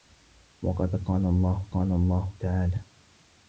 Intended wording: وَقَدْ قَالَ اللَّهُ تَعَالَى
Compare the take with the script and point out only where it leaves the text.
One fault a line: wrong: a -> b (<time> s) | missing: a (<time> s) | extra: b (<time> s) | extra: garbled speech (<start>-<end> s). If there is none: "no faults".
extra: قَالَ اللَّهُ (1.7 s)